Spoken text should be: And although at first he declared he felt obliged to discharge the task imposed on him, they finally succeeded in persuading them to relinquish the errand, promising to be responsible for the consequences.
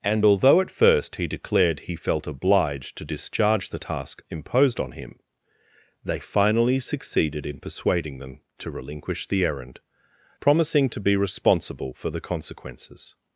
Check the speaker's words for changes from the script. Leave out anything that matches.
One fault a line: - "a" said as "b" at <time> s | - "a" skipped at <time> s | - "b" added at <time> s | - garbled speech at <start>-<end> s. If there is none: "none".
none